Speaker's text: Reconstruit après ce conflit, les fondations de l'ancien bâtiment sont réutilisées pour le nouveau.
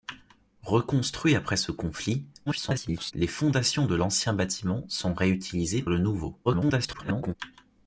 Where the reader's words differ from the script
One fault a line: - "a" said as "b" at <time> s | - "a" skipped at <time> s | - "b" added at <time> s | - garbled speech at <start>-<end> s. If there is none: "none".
- garbled speech at 2.5-3.1 s
- "pour" skipped at 5.8 s
- garbled speech at 6.4-7.4 s